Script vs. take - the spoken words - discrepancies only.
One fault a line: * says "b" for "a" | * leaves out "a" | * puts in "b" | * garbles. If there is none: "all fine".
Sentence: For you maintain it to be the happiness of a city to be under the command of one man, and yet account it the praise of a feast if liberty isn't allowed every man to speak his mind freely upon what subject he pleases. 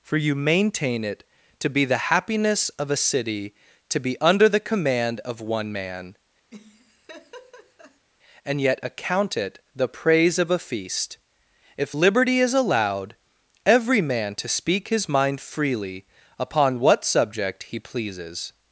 * says "is" for "isn't"